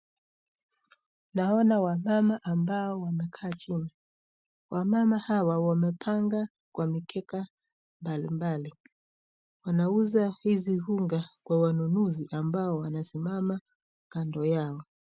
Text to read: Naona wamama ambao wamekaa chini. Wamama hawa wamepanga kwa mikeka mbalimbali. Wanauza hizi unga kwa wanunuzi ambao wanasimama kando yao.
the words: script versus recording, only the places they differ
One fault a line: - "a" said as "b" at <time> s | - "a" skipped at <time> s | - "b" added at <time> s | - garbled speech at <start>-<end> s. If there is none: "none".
none